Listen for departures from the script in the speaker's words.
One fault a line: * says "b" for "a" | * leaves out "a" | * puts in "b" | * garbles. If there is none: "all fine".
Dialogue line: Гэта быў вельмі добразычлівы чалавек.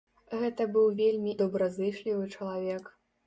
all fine